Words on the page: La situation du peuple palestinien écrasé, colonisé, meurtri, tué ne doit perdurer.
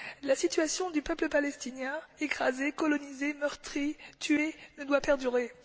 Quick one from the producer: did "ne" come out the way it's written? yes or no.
yes